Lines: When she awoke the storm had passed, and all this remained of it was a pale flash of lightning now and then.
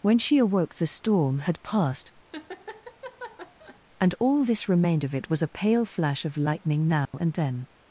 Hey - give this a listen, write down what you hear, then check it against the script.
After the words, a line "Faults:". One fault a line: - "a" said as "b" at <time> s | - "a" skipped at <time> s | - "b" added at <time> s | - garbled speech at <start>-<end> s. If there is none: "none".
When she awoke the storm had passed, and all this remained of it was a pale flash of lightning now and then.
Faults:
none